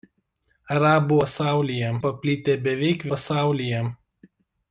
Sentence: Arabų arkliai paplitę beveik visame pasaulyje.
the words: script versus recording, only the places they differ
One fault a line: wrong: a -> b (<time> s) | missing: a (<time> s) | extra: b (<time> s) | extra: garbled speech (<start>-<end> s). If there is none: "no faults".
wrong: arkliai -> pasaulyje (1.2 s)
missing: visame (3.1 s)